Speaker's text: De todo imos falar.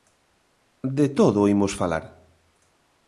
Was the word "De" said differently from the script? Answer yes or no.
no